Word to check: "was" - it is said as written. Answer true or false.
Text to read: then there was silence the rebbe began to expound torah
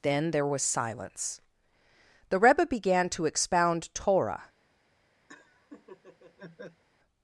true